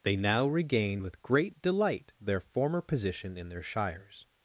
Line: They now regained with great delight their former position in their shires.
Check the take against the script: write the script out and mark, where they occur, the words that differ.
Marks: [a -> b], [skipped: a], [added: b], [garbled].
They now regained with great delight their former position in their shires.